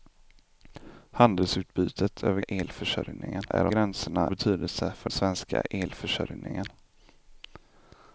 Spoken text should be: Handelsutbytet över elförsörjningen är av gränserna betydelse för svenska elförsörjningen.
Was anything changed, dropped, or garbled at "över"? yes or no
no